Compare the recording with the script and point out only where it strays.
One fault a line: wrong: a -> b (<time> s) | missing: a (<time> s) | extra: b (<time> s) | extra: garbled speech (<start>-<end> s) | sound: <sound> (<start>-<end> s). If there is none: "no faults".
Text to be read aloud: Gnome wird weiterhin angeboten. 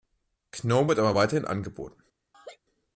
extra: aber (1.0 s)
sound: laugh (2.3-2.6 s)